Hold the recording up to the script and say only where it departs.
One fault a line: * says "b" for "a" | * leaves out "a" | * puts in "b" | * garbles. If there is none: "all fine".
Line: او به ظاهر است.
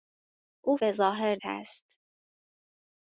all fine